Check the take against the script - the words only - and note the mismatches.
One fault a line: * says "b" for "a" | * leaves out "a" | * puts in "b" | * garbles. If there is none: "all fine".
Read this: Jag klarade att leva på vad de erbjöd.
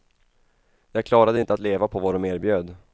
* puts in "inte"